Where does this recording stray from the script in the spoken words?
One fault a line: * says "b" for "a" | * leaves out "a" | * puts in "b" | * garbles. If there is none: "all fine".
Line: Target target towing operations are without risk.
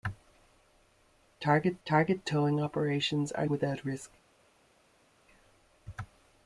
all fine